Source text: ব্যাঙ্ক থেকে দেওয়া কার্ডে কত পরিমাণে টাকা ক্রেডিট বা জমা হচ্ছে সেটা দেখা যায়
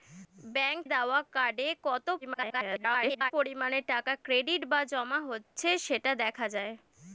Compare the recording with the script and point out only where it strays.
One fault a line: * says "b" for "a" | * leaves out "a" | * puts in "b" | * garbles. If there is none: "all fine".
* leaves out "থেকে"
* garbles